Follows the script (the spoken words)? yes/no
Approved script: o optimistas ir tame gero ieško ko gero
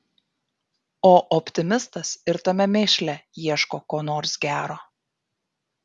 no